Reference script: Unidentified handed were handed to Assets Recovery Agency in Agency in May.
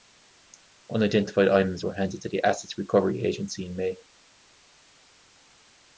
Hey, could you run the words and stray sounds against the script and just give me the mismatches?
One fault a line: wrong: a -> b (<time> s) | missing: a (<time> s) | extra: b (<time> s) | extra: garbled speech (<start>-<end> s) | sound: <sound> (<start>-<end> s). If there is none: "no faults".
wrong: handed -> items (1.5 s)
extra: the (2.3 s)
missing: Agency in (3.8 s)